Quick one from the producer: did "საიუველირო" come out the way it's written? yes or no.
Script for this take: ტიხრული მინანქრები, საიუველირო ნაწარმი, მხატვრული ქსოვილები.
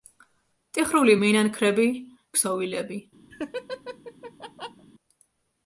no